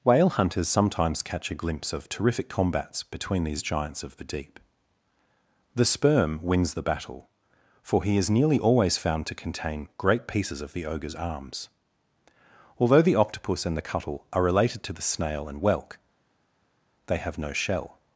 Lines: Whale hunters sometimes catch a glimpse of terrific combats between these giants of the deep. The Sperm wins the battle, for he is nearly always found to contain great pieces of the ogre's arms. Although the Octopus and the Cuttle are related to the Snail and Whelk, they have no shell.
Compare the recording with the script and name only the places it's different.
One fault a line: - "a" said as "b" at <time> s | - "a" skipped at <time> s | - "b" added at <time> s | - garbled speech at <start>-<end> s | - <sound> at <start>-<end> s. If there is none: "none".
none